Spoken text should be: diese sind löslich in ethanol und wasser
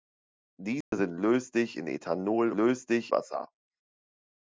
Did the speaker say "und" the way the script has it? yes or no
no